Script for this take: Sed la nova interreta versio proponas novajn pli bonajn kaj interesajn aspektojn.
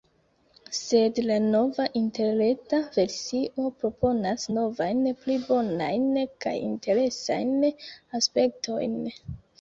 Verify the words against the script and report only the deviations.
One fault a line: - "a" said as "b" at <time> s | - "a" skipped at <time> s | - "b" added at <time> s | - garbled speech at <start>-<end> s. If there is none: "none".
none